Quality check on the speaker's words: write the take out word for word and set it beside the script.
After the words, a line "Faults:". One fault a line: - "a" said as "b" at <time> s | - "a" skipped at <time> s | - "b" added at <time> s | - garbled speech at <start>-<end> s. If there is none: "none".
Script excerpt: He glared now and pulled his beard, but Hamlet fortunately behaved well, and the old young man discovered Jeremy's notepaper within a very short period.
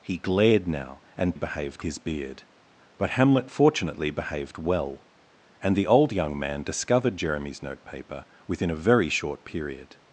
He glared now and behaved his beard, but Hamlet fortunately behaved well, and the old young man discovered Jeremy's notepaper within a very short period.
Faults:
- "pulled" said as "behaved" at 1.3 s